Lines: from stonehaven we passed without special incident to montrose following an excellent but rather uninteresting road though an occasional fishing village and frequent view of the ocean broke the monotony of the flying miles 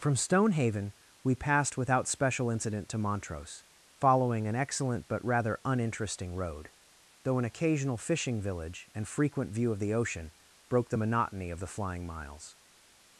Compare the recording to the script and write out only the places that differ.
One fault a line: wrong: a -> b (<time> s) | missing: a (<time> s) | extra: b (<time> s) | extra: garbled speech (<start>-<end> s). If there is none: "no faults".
no faults